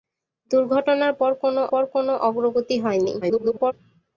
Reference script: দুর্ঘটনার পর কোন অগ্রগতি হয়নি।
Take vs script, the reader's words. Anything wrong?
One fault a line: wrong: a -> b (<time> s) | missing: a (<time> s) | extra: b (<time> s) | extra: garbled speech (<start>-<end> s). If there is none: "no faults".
extra: পর কোন (1.7 s)
extra: garbled speech (3.2-3.7 s)